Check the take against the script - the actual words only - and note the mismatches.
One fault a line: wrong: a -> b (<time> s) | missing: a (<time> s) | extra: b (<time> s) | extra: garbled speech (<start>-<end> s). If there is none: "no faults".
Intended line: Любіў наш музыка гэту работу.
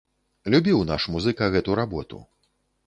no faults